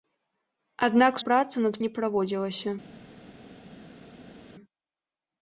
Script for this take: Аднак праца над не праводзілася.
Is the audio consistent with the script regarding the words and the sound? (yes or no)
yes